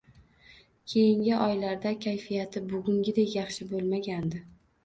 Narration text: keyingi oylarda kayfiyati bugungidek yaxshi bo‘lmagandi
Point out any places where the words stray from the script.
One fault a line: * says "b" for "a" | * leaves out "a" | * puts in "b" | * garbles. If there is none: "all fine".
all fine